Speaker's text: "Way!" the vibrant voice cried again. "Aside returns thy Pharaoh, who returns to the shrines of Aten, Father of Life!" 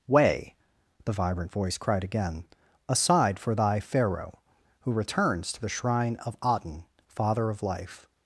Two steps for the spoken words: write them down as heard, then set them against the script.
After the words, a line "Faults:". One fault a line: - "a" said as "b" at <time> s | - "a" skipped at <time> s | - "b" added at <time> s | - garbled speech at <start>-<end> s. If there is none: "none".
"Way!" the vibrant voice cried again. "Aside for thy Pharaoh, who returns to the shrine of Aten, Father of Life!"
Faults:
- "returns" said as "for" at 3.4 s
- "shrines" said as "shrine" at 5.7 s